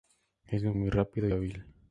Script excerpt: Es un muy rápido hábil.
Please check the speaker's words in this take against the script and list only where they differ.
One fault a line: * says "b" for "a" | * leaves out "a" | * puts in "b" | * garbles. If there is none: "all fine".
all fine